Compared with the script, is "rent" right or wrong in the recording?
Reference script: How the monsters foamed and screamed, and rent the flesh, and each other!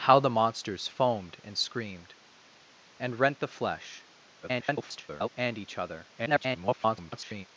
right